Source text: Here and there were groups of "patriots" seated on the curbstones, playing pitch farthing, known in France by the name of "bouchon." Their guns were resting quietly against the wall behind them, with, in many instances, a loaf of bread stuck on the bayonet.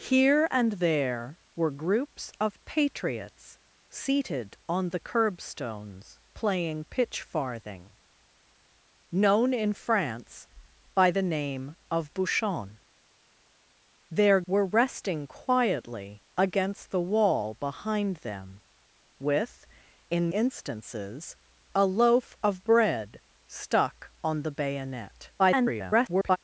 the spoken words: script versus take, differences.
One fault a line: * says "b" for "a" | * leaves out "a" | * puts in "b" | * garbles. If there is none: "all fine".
* leaves out "guns"
* leaves out "many"
* garbles